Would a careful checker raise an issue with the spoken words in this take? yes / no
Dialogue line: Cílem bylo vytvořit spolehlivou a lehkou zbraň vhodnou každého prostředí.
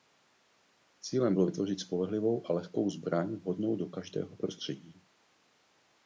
yes